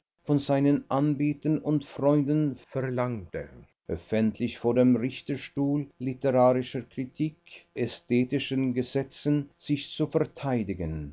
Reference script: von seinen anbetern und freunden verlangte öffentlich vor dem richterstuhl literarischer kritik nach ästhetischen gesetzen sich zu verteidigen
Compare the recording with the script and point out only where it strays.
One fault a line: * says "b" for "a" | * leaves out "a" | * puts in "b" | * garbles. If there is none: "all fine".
* leaves out "nach"